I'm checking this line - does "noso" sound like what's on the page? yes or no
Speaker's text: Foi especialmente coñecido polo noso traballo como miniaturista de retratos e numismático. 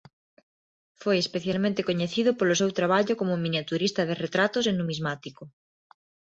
no